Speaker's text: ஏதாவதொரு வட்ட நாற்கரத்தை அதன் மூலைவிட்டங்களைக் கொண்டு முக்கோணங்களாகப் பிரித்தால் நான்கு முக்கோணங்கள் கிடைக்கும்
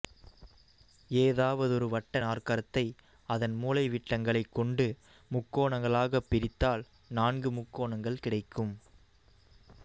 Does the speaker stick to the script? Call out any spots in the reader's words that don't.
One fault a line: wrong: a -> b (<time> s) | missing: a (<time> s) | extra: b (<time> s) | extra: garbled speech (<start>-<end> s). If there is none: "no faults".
no faults